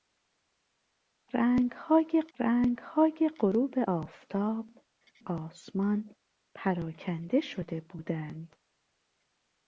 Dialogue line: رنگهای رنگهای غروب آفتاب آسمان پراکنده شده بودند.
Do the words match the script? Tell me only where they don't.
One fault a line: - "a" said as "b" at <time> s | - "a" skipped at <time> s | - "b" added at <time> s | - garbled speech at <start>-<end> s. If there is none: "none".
none